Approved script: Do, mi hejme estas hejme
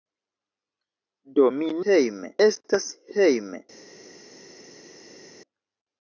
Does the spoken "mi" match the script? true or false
true